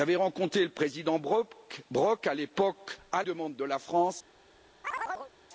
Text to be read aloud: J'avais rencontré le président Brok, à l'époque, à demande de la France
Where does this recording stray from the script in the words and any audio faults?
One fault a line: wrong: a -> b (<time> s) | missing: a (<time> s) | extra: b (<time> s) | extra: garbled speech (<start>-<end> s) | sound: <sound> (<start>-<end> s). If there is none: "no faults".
sound: chirp (4.8-5.3 s)